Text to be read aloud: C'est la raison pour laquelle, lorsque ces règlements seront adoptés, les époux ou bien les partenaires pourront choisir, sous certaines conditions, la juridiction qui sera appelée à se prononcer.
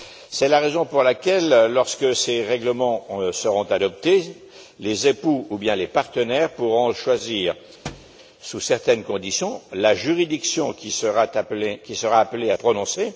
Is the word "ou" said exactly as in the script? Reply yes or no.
yes